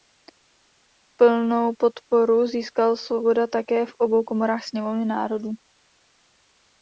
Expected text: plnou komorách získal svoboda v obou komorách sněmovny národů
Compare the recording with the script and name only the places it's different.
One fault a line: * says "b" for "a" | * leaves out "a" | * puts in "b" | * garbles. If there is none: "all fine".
* says "podporu" for "komorách"
* puts in "také"